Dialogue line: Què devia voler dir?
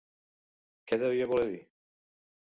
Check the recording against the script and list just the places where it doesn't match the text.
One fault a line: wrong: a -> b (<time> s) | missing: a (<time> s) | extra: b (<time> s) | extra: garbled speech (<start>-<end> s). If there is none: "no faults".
no faults